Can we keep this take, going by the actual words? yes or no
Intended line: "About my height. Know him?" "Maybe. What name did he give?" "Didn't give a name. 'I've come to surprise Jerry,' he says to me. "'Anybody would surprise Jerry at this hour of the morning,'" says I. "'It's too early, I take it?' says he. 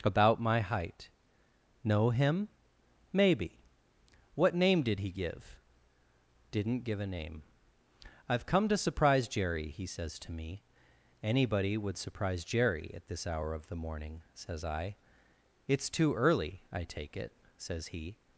yes